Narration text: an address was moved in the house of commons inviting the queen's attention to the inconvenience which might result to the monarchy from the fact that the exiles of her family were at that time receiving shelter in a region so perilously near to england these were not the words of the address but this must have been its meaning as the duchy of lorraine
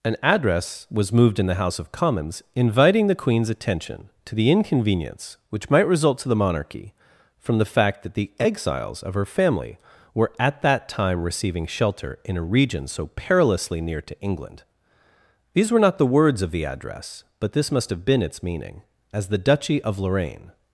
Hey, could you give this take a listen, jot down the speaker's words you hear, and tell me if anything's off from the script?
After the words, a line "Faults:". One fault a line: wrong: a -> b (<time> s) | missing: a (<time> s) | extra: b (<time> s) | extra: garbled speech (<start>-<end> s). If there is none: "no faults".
an address was moved in the house of commons inviting the queen's attention to the inconvenience which might result to the monarchy from the fact that the exiles of her family were at that time receiving shelter in a region so perilously near to england these were not the words of the address but this must have been its meaning as the duchy of lorraine
Faults:
no faults